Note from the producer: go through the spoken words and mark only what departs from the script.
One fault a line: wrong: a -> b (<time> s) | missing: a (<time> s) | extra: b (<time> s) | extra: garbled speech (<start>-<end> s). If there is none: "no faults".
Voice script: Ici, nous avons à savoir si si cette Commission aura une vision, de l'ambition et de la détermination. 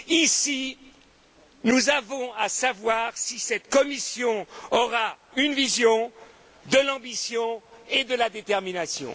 missing: si (3.4 s)